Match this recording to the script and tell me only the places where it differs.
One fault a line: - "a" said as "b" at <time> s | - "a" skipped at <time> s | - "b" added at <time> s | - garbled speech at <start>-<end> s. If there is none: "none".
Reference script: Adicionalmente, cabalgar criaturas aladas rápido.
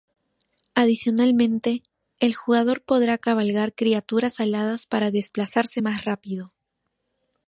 - "el jugador podrá" added at 2.2 s
- "para desplazarse más" added at 4.9 s